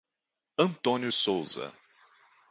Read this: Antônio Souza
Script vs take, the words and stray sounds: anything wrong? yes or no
no